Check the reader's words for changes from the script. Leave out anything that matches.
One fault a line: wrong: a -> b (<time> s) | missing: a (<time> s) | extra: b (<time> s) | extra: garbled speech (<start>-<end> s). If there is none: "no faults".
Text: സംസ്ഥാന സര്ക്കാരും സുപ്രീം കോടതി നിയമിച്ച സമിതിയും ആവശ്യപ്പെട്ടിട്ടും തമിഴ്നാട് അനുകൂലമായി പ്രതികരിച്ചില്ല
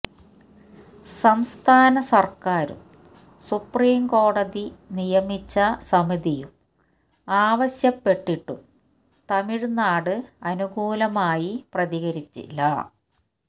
no faults